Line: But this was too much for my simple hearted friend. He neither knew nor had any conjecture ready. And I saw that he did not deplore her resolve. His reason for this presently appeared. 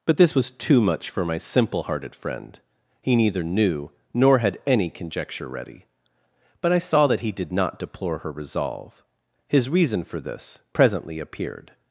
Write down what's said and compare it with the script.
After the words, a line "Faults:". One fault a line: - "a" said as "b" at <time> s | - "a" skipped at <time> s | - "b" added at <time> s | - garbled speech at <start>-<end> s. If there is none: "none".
But this was too much for my simple hearted friend. He neither knew nor had any conjecture ready. But I saw that he did not deplore her resolve. His reason for this presently appeared.
Faults:
- "And" said as "But" at 6.6 s